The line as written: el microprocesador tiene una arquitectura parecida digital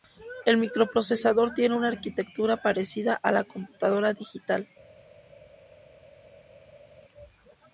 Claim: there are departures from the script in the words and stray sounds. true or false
true